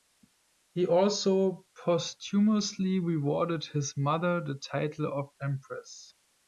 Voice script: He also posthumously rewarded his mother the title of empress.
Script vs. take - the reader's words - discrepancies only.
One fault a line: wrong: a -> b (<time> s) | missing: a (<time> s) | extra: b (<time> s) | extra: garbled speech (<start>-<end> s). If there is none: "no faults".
no faults